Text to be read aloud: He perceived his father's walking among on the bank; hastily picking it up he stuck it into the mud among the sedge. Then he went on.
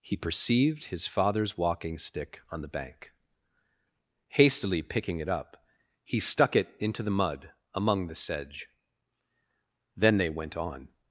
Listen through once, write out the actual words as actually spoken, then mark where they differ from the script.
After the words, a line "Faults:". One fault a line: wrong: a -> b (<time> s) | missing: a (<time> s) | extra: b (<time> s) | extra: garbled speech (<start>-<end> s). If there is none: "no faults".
He perceived his father's walking stick on the bank; hastily picking it up he stuck it into the mud among the sedge. Then they went on.
Faults:
wrong: among -> stick (2.0 s)
wrong: he -> they (10.2 s)